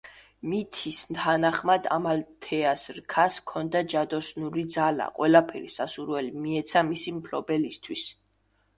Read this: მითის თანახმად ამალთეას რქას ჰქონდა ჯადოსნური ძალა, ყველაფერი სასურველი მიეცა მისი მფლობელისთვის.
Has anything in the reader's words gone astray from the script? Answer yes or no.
no